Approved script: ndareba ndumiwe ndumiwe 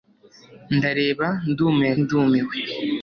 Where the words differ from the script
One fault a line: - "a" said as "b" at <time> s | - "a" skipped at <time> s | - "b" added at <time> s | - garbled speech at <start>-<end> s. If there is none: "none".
none